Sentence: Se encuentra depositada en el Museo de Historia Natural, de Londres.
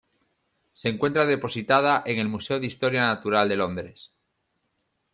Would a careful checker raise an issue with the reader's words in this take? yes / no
no